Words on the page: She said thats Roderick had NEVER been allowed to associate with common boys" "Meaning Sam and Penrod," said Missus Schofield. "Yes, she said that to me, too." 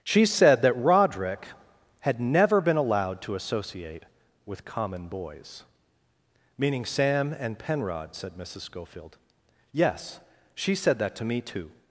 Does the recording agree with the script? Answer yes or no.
no